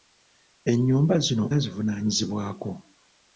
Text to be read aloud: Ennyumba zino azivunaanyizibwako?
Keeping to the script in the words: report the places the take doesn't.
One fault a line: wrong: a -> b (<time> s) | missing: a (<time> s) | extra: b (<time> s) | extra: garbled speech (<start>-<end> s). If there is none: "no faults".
no faults